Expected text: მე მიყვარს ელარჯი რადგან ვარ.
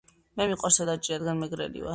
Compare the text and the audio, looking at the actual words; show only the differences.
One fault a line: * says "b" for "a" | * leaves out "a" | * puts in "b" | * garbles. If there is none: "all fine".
* puts in "მეგრელი"